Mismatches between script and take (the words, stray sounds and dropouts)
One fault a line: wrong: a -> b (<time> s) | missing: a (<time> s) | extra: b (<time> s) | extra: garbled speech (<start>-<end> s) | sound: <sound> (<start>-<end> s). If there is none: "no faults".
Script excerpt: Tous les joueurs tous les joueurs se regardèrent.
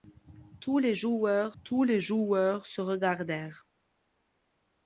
no faults